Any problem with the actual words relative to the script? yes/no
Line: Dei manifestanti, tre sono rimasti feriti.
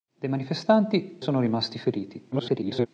yes